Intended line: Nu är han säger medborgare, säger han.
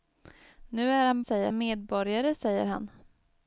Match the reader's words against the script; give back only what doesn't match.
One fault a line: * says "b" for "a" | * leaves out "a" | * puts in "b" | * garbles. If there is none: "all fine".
all fine